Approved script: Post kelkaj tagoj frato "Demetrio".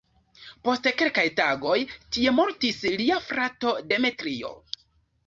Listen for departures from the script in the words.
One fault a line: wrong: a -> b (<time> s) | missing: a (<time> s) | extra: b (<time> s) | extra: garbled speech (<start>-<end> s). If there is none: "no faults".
extra: tie mortis lia (2.1 s)